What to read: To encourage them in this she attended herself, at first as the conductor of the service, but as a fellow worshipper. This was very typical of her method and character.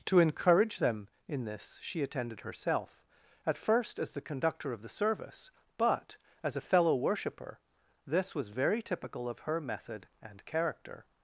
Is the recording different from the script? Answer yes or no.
no